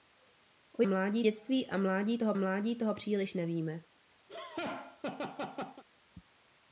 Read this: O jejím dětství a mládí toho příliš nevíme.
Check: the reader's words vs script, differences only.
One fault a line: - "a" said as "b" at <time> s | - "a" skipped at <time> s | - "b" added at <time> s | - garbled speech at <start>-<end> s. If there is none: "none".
- "jejím" said as "mládí" at 0.8 s
- "mládí toho" added at 2.4 s